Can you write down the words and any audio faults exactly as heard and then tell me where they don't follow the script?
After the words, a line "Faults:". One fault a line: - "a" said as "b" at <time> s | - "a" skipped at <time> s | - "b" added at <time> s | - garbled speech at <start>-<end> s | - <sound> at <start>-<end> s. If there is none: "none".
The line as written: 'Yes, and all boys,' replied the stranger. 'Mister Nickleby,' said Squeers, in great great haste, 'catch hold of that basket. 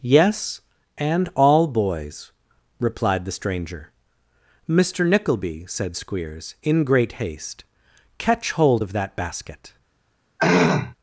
'Yes, and all boys,' replied the stranger. 'Mister Nickleby,' said Squeers, in great haste, 'catch hold of that basket.
Faults:
- "great" skipped at 7.1 s
- throat clearing at 10.4-10.9 s